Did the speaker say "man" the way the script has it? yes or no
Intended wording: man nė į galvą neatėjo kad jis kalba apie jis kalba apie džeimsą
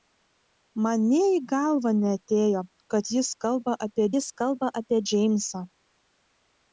yes